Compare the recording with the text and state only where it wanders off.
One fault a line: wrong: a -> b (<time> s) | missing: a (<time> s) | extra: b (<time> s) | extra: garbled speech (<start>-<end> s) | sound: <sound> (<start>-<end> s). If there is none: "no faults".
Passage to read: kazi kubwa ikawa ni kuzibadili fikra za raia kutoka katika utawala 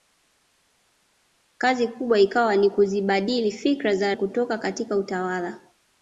missing: raia (4.1 s)